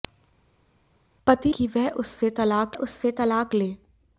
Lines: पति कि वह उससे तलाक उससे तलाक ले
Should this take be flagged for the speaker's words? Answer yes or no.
no